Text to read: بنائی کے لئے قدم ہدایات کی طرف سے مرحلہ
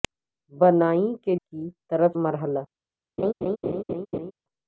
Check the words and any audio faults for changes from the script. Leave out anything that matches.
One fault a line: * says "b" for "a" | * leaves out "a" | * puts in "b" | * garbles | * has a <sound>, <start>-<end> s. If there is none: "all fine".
* leaves out "لئے قدم ہدایات"
* leaves out "سے"
* has a laugh, 3.2-4.3 s